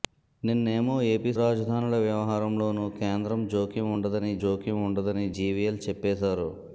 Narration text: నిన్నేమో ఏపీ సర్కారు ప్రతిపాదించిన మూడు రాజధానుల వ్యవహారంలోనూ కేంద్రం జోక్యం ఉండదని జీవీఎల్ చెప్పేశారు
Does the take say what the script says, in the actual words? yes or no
no